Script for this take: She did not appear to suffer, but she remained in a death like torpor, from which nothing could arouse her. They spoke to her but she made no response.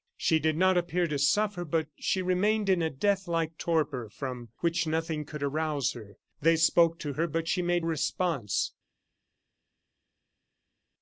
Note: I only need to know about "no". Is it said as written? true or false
false